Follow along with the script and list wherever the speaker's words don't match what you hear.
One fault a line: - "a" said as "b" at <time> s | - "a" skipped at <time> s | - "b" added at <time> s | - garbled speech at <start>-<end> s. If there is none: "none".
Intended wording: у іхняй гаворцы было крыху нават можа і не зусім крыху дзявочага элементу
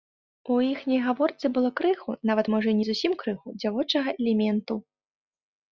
none